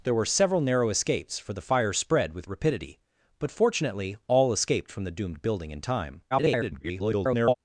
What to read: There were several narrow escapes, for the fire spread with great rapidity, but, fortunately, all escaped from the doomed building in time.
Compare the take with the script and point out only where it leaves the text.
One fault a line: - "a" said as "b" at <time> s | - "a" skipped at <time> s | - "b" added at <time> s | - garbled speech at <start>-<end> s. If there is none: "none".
- "great" skipped at 2.5 s
- garbled speech at 6.3-7.5 s